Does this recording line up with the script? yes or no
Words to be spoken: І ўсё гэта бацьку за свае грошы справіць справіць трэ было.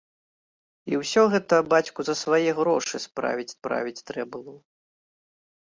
yes